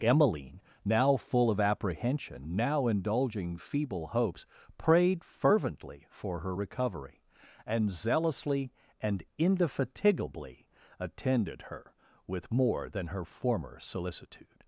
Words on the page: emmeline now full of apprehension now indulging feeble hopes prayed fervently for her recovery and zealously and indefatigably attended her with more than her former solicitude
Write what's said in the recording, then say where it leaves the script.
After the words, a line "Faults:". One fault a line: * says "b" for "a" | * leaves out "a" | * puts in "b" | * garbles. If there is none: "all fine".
emmeline now full of apprehension now indulging feeble hopes prayed fervently for her recovery and zealously and indefatigably attended her with more than her former solicitude
Faults:
all fine